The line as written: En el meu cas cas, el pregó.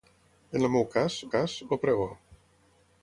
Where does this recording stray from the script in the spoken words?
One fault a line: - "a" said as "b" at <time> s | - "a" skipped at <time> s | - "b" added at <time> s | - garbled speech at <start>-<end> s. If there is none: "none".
none